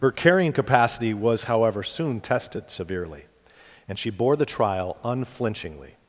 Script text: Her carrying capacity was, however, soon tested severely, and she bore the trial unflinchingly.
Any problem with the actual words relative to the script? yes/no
no